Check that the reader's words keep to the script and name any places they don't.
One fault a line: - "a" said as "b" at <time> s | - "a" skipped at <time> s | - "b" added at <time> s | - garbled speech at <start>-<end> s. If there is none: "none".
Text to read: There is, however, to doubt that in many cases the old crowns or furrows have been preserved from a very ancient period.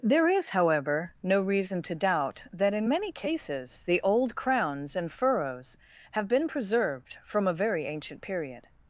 - "no reason" added at 1.2 s
- "or" said as "and" at 4.9 s